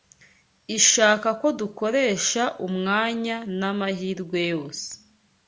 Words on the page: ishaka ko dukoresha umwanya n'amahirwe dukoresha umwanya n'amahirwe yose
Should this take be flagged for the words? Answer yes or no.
yes